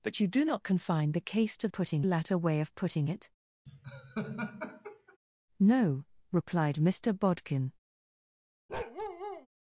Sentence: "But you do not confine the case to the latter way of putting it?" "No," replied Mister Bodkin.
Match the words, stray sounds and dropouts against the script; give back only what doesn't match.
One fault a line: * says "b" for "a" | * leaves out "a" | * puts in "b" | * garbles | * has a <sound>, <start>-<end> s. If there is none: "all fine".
* says "putting" for "the"
* has a laugh, 3.7-5.2 s
* has a bark, 8.7-9.5 s